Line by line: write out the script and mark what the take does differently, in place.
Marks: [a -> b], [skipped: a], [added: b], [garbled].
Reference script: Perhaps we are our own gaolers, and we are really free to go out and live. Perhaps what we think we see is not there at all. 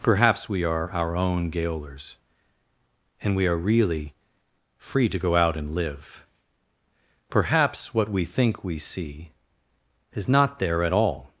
Perhaps we are our own gaolers, and we are really free to go out and live. Perhaps what we think we see is not there at all.